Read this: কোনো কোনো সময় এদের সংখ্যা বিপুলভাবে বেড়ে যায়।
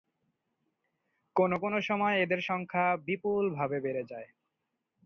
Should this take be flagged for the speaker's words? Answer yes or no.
no